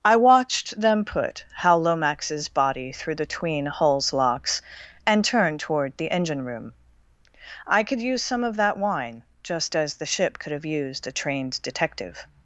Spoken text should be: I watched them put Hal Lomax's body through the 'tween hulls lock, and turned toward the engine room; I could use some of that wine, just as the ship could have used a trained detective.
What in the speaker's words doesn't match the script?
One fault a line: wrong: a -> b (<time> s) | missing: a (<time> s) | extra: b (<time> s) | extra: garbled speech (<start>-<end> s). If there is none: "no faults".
wrong: lock -> locks (4.1 s)